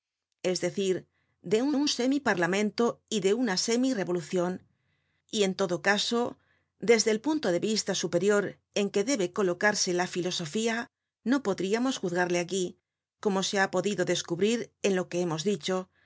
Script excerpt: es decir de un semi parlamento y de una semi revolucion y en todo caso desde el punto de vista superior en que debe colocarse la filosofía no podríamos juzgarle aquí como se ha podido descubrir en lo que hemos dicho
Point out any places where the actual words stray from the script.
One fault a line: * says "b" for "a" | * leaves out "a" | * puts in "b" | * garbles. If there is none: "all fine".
* puts in "un"